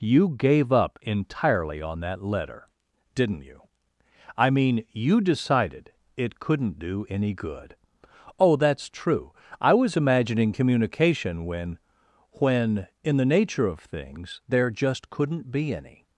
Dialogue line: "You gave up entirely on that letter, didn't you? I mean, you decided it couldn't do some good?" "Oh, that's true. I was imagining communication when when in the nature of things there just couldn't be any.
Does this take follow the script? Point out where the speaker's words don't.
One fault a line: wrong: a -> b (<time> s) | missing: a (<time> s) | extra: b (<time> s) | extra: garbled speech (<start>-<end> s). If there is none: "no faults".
wrong: some -> any (7.1 s)